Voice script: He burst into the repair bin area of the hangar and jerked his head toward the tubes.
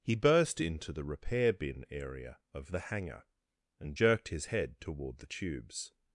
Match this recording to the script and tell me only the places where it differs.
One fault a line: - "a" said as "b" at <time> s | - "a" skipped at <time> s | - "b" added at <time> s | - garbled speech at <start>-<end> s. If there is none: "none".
none